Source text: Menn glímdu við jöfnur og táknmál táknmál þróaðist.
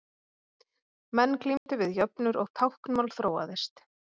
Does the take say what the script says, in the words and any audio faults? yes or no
no